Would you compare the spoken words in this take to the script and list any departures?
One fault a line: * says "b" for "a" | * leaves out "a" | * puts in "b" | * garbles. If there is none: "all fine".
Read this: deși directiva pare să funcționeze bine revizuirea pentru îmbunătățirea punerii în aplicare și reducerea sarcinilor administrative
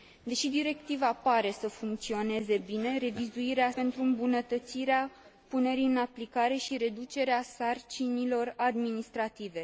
all fine